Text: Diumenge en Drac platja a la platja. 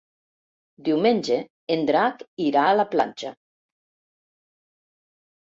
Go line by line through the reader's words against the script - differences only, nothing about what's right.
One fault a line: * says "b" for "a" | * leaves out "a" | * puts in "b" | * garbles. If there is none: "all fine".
* says "irà" for "platja"